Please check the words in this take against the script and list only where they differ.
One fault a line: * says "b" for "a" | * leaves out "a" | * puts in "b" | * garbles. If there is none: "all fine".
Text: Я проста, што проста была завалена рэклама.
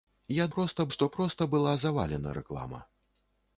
all fine